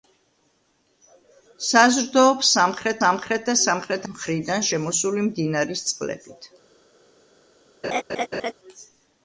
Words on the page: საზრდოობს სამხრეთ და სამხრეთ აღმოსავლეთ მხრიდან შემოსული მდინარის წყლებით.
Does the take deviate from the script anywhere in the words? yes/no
yes